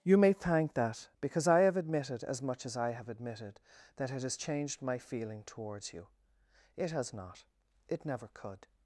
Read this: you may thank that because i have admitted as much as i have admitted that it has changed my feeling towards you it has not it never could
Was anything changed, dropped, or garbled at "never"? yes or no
no